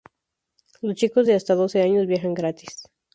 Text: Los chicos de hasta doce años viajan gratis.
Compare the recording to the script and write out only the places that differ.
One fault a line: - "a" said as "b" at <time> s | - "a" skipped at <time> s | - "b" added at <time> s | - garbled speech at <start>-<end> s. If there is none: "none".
none